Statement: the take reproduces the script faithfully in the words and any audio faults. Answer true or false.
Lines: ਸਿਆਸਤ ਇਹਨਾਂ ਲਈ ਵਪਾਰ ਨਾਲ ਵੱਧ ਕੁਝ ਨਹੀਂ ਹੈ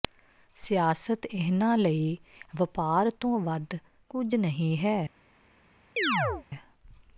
false